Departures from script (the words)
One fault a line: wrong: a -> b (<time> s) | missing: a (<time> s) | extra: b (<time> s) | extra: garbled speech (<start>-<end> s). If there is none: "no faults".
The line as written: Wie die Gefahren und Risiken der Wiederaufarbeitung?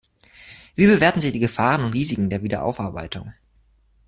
extra: bewerten Sie (0.9 s)